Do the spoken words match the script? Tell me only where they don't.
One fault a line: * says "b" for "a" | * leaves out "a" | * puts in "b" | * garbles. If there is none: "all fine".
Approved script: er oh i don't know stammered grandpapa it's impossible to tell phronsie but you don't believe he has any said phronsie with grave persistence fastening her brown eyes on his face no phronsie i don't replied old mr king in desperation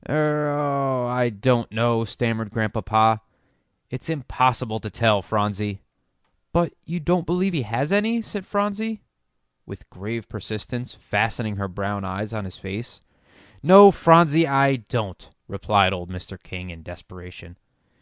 all fine